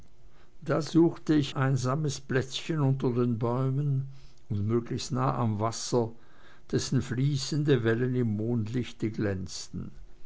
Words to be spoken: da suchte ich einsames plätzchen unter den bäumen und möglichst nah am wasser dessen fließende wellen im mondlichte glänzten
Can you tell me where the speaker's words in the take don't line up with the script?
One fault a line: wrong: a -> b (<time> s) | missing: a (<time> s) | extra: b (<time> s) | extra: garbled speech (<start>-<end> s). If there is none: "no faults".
no faults